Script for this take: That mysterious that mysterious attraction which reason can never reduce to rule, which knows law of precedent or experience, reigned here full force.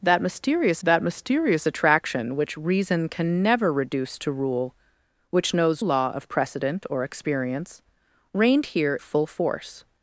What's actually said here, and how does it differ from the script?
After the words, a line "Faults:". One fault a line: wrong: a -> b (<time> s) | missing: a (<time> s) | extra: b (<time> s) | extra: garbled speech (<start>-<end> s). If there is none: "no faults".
That mysterious that mysterious attraction which reason can never reduce to rule, which knows law of precedent or experience, reigned here full force.
Faults:
no faults